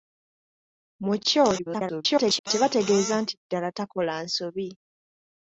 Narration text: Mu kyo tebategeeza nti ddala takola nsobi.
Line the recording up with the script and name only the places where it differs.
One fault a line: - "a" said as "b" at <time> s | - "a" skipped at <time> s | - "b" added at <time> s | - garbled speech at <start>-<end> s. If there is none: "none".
- garbled speech at 1.6-2.5 s